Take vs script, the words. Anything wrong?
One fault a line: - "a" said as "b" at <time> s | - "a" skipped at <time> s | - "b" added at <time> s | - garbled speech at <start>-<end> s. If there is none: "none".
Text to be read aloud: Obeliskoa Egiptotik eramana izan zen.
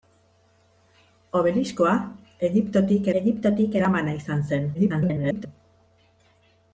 - "Egiptotik" added at 3.2 s
- garbled speech at 4.7-5.5 s